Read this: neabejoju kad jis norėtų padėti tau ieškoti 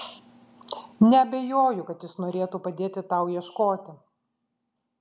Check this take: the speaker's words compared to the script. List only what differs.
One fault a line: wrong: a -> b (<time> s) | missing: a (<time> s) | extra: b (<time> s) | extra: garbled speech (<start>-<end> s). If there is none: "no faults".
no faults